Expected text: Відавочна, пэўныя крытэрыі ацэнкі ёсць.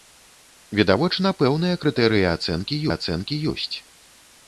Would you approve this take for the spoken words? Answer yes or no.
no